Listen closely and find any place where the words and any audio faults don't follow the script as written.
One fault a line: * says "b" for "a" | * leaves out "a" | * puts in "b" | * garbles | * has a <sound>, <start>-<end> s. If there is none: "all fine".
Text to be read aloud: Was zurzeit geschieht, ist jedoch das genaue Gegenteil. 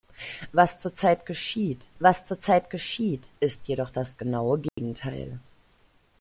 * puts in "was zurzeit geschieht"
* has a dropout, 4.7-4.8 s